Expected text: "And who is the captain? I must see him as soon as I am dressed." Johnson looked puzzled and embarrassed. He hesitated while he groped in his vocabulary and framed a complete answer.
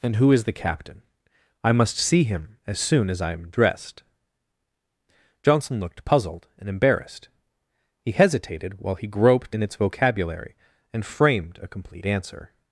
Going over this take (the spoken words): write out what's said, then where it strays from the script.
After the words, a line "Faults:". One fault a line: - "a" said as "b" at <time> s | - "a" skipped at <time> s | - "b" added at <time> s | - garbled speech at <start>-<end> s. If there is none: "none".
"And who is the captain? I must see him as soon as I am dressed." Johnson looked puzzled and embarrassed. He hesitated while he groped in its vocabulary and framed a complete answer.
Faults:
- "his" said as "its" at 9.6 s